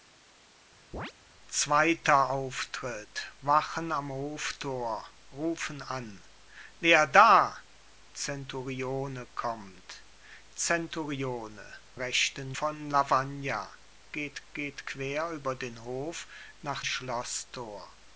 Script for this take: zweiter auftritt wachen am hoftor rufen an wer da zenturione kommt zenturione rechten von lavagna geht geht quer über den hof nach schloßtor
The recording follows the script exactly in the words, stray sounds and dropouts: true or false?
false